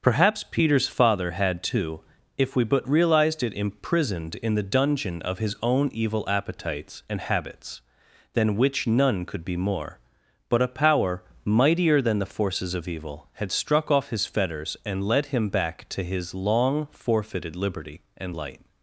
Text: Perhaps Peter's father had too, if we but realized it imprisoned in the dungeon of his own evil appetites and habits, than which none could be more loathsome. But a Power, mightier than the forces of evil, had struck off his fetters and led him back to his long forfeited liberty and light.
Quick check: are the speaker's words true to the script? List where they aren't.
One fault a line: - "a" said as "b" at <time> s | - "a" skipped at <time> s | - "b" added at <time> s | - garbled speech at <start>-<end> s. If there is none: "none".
- "loathsome" skipped at 10.0 s